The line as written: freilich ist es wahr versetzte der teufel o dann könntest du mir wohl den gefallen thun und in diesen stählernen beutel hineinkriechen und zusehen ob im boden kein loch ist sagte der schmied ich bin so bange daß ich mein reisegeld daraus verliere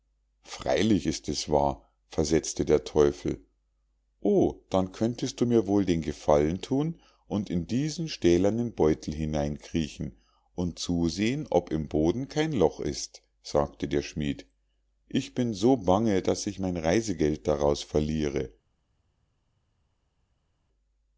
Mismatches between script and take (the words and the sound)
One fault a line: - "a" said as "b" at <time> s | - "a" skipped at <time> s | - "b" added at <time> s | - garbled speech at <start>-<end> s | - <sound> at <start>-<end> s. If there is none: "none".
none